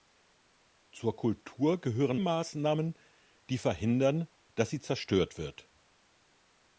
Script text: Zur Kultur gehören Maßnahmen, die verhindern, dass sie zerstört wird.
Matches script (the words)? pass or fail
pass